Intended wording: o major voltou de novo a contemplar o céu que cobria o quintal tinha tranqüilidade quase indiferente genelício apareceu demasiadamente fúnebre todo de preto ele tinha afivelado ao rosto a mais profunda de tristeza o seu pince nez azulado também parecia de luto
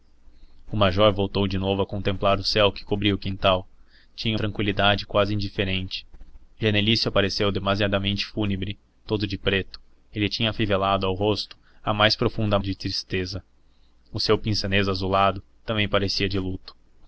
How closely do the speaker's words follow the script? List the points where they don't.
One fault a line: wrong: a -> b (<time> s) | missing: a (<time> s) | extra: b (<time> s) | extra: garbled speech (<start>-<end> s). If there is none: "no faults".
no faults